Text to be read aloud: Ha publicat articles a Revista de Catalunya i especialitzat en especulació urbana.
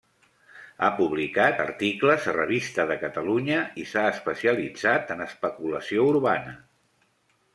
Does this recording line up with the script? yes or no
no